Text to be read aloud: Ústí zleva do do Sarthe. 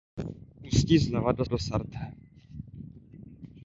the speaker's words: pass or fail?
pass